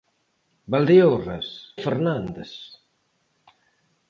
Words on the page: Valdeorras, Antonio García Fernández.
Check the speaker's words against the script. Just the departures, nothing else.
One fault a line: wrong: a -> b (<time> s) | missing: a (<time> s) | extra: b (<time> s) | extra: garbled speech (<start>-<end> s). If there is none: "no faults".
missing: Antonio García (1.8 s)